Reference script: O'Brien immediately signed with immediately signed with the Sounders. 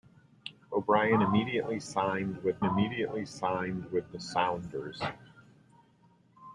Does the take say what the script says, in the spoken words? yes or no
yes